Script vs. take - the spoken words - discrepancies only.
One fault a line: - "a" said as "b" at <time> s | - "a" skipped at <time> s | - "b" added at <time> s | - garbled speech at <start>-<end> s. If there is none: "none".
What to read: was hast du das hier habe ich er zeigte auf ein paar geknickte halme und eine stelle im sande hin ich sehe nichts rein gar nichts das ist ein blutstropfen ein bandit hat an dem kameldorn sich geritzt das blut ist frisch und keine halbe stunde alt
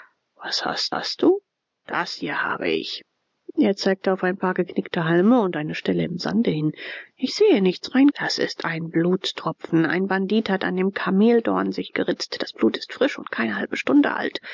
- "hast" added at 0.9 s
- "gar nichts" skipped at 8.1 s